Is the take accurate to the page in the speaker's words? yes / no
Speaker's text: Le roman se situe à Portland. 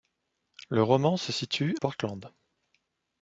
no